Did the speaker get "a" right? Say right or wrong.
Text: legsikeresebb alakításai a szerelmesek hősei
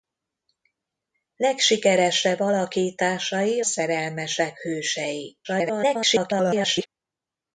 wrong